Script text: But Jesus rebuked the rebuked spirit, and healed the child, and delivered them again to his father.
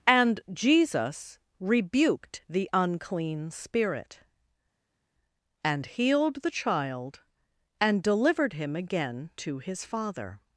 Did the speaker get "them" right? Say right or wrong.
wrong